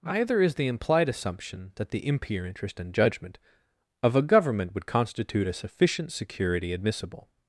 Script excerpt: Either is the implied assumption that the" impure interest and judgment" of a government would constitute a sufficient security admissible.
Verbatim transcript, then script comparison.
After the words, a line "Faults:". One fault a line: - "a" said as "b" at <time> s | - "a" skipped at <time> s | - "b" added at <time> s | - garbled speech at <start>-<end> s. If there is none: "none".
Either is the implied assumption that the" impure interest and judgment" of a government would constitute a sufficient security admissible.
Faults:
none